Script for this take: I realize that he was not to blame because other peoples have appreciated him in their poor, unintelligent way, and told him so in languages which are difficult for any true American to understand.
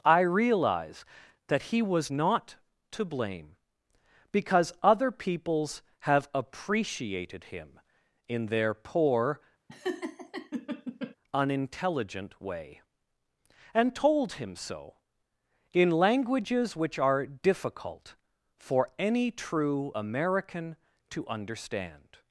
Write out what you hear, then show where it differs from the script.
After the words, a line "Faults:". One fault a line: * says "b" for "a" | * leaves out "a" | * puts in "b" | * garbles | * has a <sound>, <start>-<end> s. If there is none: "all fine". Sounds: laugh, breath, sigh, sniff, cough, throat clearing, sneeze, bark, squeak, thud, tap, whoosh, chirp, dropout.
I realize that he was not to blame because other peoples have appreciated him in their poor, unintelligent way, and told him so in languages which are difficult for any true American to understand.
Faults:
* has a laugh, 9.7-11.2 s